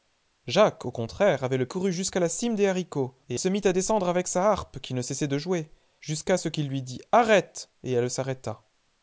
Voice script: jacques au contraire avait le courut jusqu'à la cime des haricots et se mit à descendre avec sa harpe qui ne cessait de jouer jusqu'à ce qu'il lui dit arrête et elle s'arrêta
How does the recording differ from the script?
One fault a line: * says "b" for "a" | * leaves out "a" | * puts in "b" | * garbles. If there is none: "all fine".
all fine